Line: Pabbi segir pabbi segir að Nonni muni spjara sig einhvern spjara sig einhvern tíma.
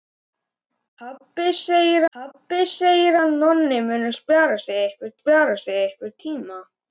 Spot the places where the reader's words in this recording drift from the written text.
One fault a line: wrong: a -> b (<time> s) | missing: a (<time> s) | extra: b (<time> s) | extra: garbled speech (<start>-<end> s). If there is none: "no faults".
no faults